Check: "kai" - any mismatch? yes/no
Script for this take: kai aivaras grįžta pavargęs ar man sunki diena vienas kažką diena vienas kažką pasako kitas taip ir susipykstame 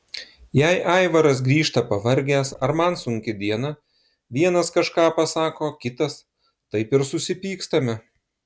yes